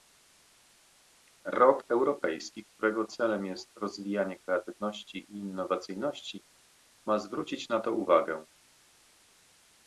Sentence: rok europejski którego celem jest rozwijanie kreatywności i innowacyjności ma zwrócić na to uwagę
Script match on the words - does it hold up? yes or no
yes